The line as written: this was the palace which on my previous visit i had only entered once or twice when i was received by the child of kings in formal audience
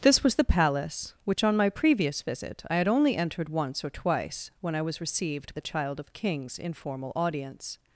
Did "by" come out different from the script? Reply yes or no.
yes